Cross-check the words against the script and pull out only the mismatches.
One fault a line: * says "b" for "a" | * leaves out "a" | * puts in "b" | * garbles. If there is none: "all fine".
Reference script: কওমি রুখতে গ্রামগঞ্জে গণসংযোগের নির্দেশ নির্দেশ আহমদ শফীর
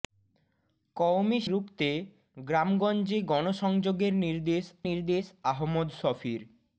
all fine